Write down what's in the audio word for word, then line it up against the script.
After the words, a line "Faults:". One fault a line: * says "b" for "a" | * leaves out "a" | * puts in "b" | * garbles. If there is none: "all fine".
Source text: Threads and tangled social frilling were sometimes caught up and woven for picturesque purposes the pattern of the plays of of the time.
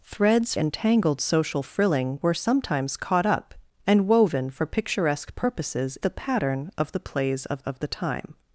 Threads and tangled social frilling were sometimes caught up and woven for picturesque purposes the pattern of the plays of of the time.
Faults:
all fine